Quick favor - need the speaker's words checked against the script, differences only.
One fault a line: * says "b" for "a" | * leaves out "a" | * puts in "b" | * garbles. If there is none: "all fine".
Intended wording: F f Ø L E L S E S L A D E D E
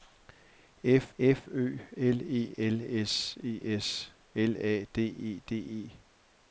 all fine